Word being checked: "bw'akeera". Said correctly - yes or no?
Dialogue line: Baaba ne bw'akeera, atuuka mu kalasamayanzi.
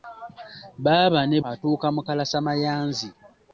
no